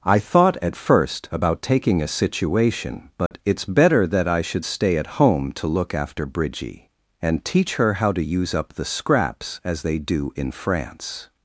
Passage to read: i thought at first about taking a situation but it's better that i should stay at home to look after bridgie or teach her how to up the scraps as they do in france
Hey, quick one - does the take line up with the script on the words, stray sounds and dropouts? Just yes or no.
no